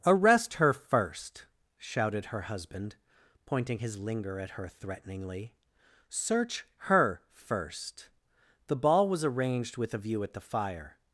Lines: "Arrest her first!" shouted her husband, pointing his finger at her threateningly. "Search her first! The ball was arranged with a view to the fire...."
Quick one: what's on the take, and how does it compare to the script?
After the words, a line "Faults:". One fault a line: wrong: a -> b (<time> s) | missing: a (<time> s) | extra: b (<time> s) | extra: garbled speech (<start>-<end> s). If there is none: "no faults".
"Arrest her first!" shouted her husband, pointing his linger at her threateningly. "Search her first! The ball was arranged with a view at the fire...."
Faults:
wrong: finger -> linger (4.0 s)
wrong: to -> at (10.2 s)